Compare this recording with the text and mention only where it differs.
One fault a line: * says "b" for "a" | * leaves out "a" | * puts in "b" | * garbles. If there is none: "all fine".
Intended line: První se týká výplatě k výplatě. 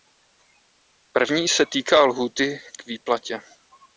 * says "lhůty" for "výplatě"